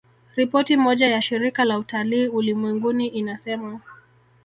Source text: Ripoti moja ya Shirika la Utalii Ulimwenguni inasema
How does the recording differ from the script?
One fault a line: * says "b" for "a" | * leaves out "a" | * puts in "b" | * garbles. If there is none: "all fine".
all fine